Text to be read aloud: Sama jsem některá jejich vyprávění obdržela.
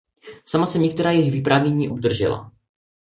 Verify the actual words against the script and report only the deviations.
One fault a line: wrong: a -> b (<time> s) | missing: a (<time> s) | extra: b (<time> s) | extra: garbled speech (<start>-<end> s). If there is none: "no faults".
no faults